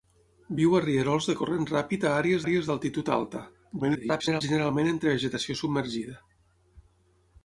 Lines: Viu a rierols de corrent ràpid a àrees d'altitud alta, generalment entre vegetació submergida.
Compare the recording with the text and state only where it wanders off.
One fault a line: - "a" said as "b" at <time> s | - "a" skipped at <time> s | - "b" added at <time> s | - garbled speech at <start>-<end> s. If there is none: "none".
- "àrees" added at 2.4 s
- garbled speech at 3.8-4.4 s